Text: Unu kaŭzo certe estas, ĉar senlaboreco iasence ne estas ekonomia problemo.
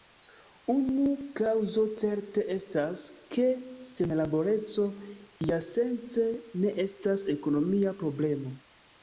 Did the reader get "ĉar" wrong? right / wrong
wrong